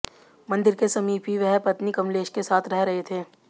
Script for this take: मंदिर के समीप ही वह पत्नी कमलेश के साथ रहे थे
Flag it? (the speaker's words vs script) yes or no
yes